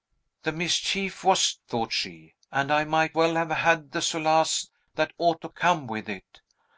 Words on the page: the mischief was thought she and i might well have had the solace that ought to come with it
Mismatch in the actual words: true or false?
false